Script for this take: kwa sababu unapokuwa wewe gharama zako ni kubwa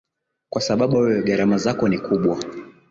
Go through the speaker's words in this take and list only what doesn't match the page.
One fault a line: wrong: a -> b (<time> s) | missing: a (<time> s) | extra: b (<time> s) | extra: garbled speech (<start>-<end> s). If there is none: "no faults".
missing: unapokuwa (1.0 s)